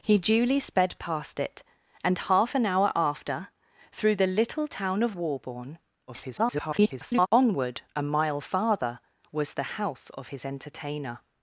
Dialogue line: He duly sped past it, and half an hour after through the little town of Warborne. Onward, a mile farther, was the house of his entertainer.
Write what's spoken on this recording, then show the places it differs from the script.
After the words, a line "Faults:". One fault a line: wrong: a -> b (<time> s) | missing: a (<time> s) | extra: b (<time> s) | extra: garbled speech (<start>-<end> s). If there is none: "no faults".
He duly sped past it, and half an hour after through the little town of Warborne. [garbled] Onward, a mile farther, was the house of his entertainer.
Faults:
extra: garbled speech (6.1-7.3 s)